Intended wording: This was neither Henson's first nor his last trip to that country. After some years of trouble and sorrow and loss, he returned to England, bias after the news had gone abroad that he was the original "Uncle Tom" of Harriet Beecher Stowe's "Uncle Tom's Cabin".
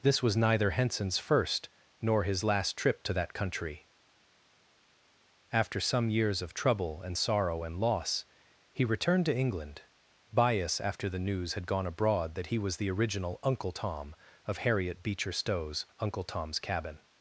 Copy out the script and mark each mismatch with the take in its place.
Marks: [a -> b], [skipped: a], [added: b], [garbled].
This was neither Henson's first nor his last trip to that country. After some years of trouble and sorrow and loss, he returned to England, bias after the news had gone abroad that he was the original "Uncle Tom" of Harriet Beecher Stowe's "Uncle Tom's Cabin".